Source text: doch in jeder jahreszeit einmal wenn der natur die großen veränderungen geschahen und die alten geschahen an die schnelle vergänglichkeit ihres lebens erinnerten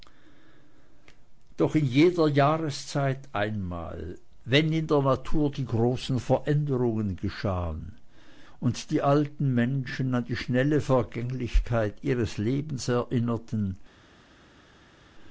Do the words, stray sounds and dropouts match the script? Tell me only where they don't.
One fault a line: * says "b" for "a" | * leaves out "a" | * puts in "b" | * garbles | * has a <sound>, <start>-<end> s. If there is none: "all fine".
* puts in "in"
* says "menschen" for "geschahen"